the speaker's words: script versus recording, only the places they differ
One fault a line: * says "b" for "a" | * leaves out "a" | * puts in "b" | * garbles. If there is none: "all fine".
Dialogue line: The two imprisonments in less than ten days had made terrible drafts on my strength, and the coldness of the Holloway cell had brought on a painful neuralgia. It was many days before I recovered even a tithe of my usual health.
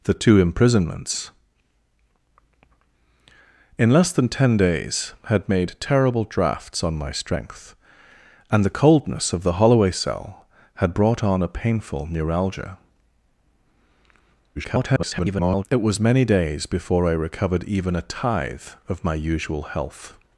* garbles